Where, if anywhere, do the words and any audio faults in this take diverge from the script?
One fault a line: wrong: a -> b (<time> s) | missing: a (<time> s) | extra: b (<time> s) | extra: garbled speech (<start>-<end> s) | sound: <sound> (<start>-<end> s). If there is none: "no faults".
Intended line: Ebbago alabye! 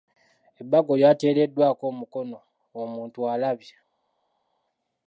extra: lyateereddwako omukono omuntu (1.0 s)